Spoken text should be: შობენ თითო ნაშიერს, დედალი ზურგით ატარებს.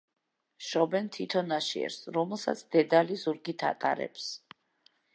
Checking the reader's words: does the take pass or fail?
fail